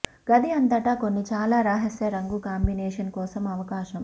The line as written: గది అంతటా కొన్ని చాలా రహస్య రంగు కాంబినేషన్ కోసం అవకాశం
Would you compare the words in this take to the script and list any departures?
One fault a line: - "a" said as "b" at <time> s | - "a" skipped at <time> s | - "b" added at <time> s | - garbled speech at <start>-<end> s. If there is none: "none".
none